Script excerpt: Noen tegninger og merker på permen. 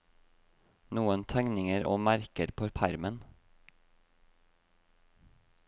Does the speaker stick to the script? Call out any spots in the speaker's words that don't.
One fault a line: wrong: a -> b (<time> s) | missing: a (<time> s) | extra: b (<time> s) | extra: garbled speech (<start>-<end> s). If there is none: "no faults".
no faults